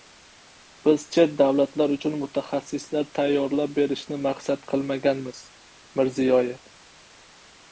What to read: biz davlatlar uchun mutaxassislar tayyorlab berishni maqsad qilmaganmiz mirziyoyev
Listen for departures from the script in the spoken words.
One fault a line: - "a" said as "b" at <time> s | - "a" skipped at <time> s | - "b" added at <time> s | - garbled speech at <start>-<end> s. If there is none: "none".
- "chet" added at 1.1 s